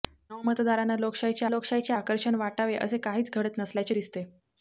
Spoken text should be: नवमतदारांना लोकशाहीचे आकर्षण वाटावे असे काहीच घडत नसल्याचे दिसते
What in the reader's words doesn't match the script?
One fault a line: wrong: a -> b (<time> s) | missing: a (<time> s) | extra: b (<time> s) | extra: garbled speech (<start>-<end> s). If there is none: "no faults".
extra: लोकशाहीचे (1.5 s)